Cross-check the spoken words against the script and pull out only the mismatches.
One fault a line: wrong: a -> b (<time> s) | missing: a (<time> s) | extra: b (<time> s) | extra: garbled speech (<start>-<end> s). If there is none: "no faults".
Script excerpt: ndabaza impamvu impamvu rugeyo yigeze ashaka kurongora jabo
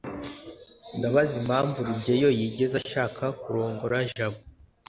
missing: impamvu (1.8 s)